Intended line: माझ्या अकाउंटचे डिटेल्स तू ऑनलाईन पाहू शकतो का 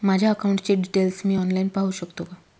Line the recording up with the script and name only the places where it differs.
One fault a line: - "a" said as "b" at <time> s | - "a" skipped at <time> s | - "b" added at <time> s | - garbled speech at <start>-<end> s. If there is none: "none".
- "तू" said as "मी" at 1.2 s